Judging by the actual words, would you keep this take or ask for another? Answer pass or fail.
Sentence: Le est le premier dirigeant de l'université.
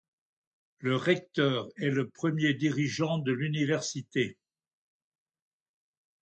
fail